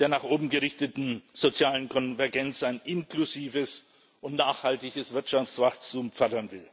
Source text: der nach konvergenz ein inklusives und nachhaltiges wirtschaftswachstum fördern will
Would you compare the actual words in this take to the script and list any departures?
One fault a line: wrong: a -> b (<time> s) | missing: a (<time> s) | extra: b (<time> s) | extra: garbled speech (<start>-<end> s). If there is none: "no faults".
extra: oben gerichteten sozialen (0.2 s)